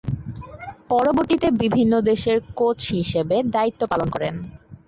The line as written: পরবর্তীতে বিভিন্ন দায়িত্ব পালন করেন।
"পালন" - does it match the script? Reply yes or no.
yes